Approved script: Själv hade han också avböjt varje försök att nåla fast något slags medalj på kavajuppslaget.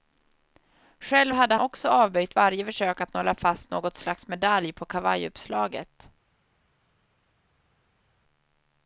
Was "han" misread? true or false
true